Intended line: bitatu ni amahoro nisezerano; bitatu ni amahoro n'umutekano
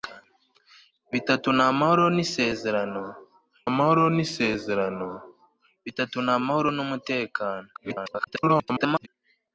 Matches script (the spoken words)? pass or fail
fail